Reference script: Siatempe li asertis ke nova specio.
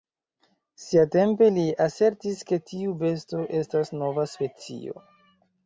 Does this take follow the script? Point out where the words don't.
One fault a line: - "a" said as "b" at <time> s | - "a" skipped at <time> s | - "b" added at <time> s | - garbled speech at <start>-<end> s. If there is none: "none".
- "tiu besto estas" added at 2.7 s